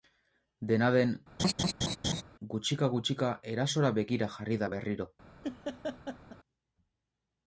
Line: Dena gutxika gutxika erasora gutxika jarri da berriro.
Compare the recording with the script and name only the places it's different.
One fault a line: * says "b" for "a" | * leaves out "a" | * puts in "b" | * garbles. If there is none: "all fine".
* puts in "den"
* says "begira" for "gutxika"